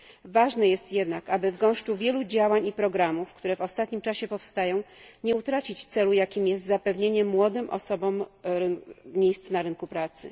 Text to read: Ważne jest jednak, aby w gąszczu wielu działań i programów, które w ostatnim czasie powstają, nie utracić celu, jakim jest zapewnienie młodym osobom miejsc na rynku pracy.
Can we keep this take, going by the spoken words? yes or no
yes